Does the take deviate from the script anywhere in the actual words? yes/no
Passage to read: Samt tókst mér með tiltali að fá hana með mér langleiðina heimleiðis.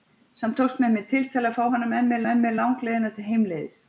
yes